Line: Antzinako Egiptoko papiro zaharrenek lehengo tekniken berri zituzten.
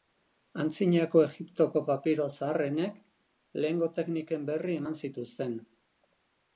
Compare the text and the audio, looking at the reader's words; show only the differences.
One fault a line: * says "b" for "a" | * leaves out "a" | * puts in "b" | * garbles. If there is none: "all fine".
* puts in "eman"